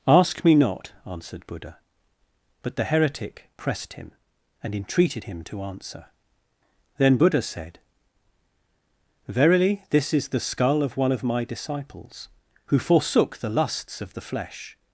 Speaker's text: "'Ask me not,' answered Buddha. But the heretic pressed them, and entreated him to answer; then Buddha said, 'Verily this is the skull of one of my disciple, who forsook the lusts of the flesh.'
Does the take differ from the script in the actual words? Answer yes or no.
yes